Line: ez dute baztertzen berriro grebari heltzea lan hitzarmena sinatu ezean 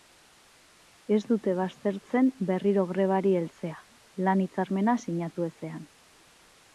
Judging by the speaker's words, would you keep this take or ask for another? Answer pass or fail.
pass